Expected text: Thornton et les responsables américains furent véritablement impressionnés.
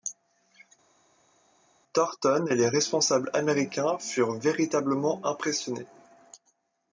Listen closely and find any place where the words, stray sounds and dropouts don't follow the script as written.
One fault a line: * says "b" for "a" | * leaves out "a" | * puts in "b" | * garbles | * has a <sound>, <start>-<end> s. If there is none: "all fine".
all fine